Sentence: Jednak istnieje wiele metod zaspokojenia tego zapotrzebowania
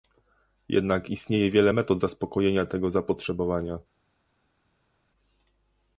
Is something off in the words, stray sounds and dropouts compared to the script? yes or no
no